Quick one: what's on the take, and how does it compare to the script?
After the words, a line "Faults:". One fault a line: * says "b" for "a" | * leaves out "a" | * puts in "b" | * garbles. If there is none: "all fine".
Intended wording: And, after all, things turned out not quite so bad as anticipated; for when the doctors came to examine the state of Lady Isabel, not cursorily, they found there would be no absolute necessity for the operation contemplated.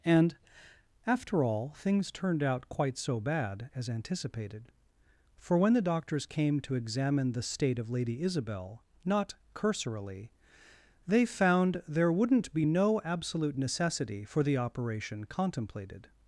And, after all, things turned out quite so bad as anticipated; for when the doctors came to examine the state of Lady Isabel, not cursorily, they found there wouldn't be no absolute necessity for the operation contemplated.
Faults:
* leaves out "not"
* says "wouldn't" for "would"